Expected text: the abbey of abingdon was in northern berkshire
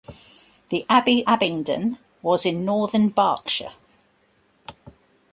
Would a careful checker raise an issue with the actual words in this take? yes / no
yes